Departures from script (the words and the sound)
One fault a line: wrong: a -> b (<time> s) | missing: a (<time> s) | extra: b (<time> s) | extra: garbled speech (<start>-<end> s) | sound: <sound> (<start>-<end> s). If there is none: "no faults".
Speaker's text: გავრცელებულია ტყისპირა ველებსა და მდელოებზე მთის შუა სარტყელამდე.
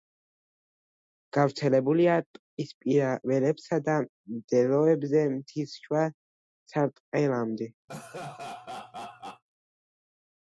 sound: laugh (7.9-9.4 s)